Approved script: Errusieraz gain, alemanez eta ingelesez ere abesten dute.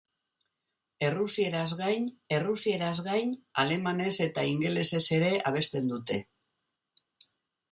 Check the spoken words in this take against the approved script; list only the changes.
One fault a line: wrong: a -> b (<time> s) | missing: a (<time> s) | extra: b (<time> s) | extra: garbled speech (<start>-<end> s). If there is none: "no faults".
extra: errusieraz gain (2.4 s)